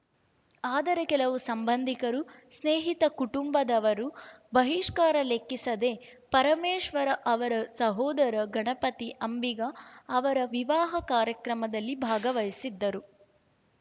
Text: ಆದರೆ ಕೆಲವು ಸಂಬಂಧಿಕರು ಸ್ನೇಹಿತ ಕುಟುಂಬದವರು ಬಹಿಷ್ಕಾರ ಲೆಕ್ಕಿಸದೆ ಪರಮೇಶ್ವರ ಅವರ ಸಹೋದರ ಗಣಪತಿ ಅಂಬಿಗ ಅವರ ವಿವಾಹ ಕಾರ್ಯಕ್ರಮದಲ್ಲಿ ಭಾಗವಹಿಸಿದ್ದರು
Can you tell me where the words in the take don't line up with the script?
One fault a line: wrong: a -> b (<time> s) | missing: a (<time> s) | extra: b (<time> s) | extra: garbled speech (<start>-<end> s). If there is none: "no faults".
no faults